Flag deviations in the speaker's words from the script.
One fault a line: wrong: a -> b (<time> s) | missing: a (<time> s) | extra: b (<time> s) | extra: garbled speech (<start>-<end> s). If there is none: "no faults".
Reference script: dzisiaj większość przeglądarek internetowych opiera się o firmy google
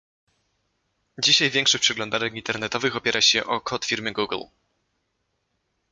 extra: kod (3.6 s)